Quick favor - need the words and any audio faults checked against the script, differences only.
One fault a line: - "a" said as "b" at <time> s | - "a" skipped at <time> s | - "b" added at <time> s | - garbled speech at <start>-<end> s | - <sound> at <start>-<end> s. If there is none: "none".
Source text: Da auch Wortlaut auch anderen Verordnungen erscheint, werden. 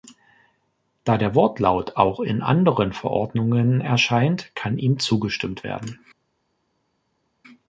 - "auch" said as "der" at 1.2 s
- "in" added at 2.2 s
- "kann ihm zugestimmt" added at 4.5 s